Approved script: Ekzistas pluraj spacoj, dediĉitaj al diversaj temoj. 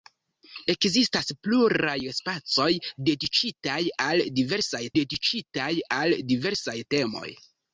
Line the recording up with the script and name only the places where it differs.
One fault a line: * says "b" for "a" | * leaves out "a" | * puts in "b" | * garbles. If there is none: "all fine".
* puts in "dediĉitaj al diversaj"